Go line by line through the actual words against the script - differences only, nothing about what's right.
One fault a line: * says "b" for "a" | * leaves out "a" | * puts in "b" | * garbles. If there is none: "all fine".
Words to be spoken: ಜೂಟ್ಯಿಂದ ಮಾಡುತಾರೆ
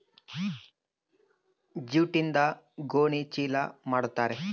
* puts in "ಗೋಣಿ ಚೀಲ"